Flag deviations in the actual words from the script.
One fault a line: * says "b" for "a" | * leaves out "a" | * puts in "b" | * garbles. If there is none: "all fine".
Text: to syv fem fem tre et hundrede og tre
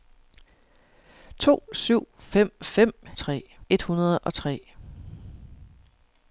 all fine